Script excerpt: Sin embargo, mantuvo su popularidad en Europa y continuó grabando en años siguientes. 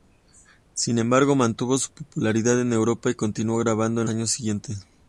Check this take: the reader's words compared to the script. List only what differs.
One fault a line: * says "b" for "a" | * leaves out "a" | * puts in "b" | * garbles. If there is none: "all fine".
all fine